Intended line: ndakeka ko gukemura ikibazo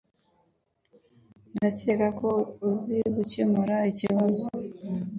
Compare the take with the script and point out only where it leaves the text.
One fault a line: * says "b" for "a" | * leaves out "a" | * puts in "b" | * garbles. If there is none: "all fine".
* puts in "uzi"